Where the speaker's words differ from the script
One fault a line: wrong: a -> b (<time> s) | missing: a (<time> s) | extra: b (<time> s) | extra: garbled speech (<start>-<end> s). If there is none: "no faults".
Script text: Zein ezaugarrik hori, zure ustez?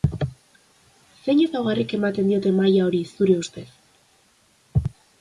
extra: ematen diote maila (2.0 s)